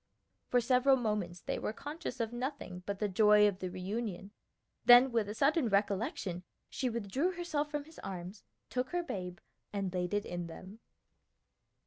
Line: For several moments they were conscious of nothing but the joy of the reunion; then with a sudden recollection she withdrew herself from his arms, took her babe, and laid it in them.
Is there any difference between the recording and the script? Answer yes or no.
no